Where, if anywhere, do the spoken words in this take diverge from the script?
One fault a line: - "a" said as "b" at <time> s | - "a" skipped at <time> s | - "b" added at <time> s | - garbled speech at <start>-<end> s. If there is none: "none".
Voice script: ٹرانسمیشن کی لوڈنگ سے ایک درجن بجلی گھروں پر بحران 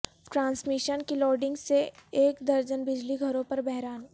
none